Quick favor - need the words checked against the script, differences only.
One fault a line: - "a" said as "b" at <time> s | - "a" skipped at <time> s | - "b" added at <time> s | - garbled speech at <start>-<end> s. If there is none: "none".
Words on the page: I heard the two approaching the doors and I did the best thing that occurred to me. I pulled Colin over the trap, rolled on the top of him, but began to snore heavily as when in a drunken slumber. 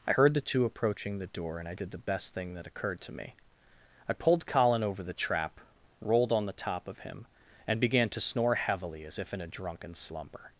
- "doors" said as "door" at 1.3 s
- "but" said as "and" at 7.7 s
- "when" said as "if" at 9.2 s